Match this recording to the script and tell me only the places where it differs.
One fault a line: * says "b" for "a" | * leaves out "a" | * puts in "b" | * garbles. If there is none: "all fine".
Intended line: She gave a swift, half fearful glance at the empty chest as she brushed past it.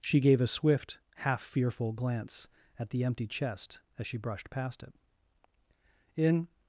* puts in "In"